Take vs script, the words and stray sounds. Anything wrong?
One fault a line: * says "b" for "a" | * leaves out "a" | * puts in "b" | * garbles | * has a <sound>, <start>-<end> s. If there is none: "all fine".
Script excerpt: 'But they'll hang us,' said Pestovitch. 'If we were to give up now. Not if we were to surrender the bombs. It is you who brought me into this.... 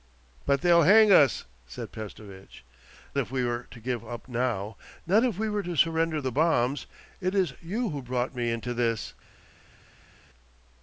all fine